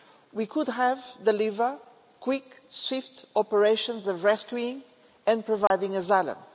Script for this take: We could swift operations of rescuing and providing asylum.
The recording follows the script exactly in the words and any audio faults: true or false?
false